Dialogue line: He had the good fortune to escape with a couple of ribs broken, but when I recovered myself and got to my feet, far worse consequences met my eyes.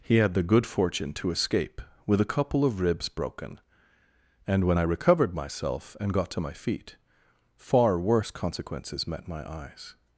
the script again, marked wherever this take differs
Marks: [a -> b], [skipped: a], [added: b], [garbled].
He had the good fortune to escape with a couple of ribs broken, [but -> and] when I recovered myself and got to my feet, far worse consequences met my eyes.